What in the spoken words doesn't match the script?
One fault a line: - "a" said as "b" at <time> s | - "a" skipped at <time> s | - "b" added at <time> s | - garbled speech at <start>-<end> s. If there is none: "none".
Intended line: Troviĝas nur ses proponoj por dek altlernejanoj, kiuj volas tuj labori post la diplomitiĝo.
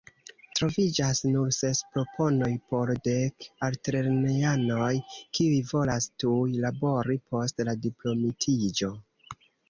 none